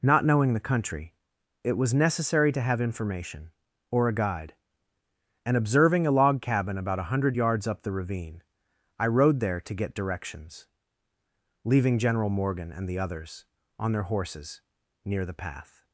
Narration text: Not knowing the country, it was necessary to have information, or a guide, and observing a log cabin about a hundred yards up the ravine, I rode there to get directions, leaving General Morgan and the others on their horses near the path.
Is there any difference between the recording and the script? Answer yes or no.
no